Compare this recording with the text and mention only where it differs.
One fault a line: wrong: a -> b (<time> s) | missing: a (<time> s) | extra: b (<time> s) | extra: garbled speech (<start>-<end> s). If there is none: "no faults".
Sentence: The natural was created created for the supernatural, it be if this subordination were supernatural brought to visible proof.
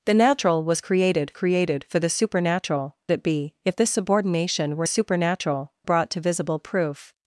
no faults